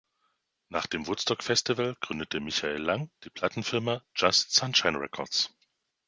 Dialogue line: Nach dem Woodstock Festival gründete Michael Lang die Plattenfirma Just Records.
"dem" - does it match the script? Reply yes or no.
yes